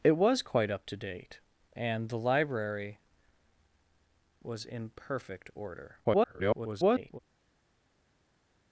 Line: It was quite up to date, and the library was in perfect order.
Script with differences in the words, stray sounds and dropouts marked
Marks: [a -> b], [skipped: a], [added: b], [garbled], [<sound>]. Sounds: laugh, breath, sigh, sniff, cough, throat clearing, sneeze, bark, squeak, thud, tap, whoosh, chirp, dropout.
It was quite up to date, and the library was in perfect order. [garbled]